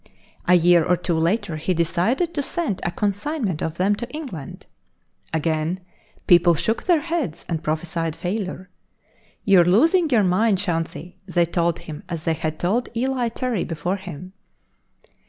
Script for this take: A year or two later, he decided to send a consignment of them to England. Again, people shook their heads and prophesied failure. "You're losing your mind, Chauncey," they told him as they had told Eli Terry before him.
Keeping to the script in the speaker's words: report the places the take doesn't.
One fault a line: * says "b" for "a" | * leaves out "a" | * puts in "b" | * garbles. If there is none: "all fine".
all fine